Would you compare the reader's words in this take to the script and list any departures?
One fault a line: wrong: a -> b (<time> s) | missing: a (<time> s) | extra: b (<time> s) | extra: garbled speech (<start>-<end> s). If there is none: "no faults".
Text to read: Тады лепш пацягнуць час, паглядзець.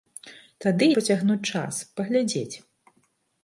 missing: лепш (0.9 s)